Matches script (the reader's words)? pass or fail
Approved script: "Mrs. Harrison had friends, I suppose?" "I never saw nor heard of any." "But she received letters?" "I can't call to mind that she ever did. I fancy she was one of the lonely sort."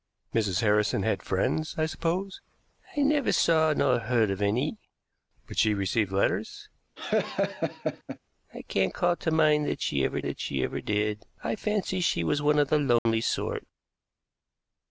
fail